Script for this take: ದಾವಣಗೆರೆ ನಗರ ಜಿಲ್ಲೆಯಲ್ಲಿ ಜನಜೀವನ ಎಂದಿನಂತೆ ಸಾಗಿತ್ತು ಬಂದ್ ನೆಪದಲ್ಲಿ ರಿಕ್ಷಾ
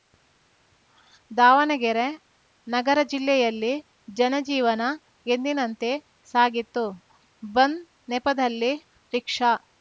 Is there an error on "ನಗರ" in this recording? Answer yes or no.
no